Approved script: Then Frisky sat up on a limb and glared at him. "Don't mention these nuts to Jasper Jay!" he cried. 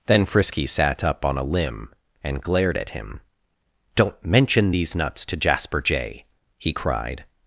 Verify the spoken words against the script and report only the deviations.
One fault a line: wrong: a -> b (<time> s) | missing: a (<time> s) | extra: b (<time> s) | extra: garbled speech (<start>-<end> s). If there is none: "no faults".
no faults